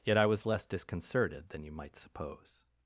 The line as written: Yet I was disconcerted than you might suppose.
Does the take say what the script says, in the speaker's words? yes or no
no